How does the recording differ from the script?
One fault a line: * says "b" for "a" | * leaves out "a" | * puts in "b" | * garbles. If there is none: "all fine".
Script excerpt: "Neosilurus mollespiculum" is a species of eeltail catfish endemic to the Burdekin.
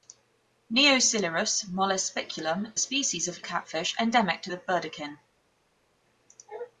* leaves out "is"
* leaves out "eeltail"